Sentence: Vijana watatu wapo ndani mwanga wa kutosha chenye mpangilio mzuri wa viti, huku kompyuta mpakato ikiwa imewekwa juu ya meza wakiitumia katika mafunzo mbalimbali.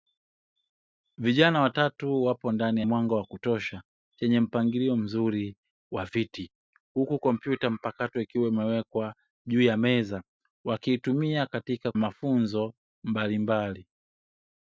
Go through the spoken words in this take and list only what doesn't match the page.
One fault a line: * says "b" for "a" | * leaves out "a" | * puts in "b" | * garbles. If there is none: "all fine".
all fine